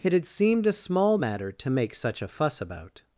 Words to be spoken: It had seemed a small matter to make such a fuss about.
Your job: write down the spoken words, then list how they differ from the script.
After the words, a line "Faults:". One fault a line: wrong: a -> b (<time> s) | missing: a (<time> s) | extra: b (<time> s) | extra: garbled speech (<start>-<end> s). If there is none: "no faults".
It had seemed a small matter to make such a fuss about.
Faults:
no faults